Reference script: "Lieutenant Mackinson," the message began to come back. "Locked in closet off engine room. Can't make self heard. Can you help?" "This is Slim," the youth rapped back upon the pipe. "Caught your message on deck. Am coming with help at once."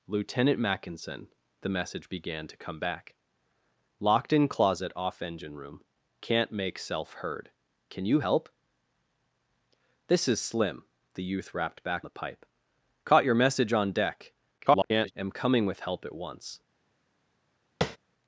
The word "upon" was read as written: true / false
false